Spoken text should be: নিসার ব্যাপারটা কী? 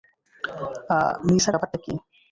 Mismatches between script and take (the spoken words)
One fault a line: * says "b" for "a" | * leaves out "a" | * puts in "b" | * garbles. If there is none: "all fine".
all fine